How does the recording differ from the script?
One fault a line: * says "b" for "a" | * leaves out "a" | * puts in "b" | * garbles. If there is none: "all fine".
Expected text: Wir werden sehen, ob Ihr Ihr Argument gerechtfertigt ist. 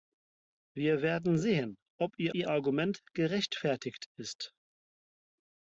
all fine